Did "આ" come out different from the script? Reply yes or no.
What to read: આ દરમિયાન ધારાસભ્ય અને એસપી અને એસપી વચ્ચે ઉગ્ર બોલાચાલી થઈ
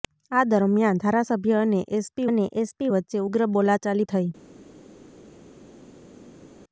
no